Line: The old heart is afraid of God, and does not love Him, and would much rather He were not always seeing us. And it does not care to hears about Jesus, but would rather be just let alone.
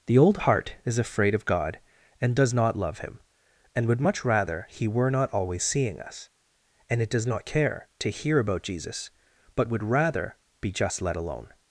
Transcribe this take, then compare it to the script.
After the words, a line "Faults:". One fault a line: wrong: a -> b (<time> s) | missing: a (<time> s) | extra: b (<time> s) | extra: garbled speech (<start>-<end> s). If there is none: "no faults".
The old heart is afraid of God, and does not love Him, and would much rather He were not always seeing us. And it does not care to hear about Jesus, but would rather be just let alone.
Faults:
wrong: hears -> hear (8.1 s)